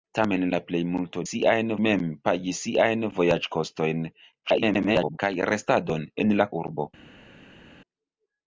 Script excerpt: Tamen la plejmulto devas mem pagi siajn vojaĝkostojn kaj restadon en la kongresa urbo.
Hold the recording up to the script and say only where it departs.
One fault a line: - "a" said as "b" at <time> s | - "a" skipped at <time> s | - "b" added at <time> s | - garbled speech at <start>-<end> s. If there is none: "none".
- "devas" said as "siajn" at 1.3 s
- garbled speech at 4.4-5.2 s
- "kongresa" skipped at 6.5 s